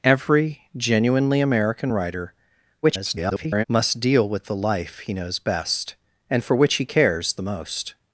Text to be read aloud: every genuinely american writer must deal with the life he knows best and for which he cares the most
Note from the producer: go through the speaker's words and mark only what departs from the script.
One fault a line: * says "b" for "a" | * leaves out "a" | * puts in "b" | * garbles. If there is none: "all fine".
* garbles